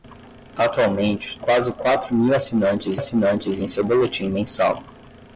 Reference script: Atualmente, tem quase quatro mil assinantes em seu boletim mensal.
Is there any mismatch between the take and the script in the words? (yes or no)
yes